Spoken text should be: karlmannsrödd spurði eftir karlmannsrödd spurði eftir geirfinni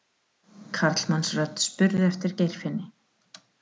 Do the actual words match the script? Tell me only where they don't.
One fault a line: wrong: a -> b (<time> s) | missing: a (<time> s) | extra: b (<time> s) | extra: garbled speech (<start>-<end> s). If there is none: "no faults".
missing: karlmannsrödd spurði eftir (2.4 s)